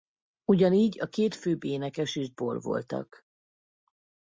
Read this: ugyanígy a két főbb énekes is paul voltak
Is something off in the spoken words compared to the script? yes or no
no